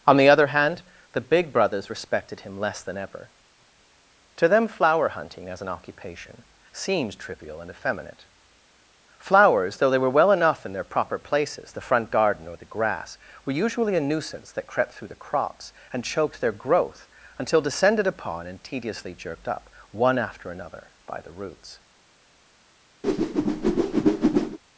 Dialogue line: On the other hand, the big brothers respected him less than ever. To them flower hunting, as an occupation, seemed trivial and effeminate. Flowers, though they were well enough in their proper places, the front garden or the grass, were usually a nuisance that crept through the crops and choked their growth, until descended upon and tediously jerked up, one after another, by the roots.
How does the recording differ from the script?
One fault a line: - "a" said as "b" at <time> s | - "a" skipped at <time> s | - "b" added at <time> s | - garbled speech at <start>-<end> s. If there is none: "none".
none